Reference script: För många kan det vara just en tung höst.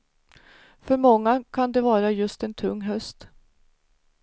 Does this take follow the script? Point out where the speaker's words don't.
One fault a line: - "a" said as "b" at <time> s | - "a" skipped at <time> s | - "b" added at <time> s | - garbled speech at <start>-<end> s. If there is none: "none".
none